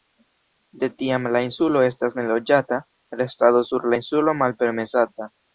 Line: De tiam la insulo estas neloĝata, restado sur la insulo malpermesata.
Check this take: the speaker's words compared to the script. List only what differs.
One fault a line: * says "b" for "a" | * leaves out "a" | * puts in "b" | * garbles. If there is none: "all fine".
all fine